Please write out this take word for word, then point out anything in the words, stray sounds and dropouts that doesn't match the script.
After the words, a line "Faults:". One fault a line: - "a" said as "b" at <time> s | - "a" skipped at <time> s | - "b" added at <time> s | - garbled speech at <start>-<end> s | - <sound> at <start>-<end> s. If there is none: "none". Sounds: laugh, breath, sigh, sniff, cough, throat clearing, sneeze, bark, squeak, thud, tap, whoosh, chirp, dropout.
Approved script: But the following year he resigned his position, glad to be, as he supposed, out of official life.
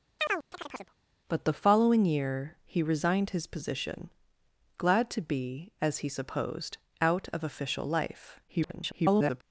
But the following year he resigned his position, glad to be, as he supposed, out of official life. [garbled]
Faults:
- chirp at 0.2-1.0 s
- garbled speech at 8.5-9.4 s